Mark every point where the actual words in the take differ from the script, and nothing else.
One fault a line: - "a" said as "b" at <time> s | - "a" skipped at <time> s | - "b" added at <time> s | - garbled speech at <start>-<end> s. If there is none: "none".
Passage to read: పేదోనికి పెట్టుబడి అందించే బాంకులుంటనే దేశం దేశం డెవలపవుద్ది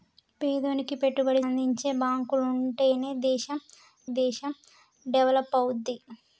none